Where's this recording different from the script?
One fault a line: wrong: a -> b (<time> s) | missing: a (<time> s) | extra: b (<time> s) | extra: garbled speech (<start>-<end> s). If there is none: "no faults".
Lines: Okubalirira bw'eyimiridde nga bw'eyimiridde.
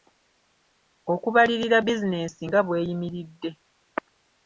wrong: bw'eyimiridde -> bizinensi (1.9 s)